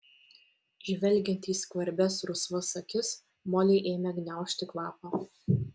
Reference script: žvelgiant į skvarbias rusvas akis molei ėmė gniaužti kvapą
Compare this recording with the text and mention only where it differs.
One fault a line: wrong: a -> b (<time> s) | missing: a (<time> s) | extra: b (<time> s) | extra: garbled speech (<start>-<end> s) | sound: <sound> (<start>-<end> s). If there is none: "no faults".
no faults